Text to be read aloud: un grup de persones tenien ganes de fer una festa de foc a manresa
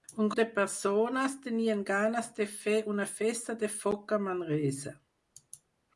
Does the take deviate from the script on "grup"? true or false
true